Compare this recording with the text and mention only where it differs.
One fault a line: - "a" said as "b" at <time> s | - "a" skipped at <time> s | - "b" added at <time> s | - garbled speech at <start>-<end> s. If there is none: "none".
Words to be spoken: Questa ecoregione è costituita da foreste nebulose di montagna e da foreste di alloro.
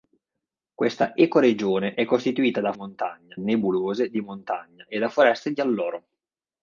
- "foreste" said as "montagna" at 2.7 s